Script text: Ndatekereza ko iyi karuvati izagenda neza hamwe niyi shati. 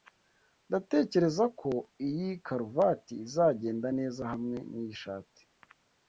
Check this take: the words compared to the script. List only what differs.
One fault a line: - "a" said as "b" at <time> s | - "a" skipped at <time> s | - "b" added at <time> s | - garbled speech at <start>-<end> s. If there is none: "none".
none